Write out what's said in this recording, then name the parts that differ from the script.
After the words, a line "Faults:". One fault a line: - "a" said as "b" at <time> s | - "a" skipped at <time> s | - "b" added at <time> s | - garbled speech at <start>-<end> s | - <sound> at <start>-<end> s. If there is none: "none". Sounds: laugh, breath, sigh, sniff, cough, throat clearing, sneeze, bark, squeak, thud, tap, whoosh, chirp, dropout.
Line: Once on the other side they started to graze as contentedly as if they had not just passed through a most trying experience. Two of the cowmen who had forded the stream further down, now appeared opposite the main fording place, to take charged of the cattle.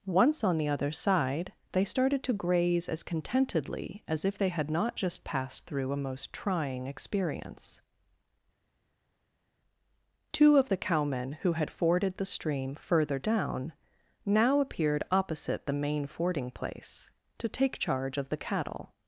Once on the other side they started to graze as contentedly as if they had not just passed through a most trying experience. Two of the cowmen who had forded the stream further down, now appeared opposite the main fording place, to take charge of the cattle.
Faults:
- "charged" said as "charge" at 17.8 s